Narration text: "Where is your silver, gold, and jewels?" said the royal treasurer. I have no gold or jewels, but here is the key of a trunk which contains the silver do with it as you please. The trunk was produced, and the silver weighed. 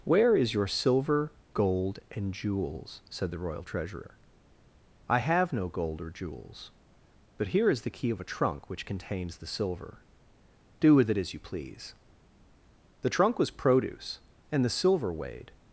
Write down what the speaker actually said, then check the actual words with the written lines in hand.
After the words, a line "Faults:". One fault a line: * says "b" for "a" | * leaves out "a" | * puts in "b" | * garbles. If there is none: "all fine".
"Where is your silver, gold, and jewels?" said the royal treasurer. I have no gold or jewels, but here is the key of a trunk which contains the silver do with it as you please. The trunk was produce, and the silver weighed.
Faults:
* says "produce" for "produced"